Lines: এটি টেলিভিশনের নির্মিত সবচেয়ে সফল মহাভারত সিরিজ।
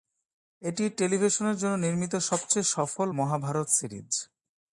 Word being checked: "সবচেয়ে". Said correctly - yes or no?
yes